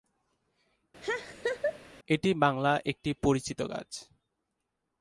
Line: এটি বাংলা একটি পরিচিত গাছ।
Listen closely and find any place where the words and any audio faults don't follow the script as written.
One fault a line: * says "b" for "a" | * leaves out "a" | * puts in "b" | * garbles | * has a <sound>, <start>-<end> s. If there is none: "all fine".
* has a laugh, 1.0-1.8 s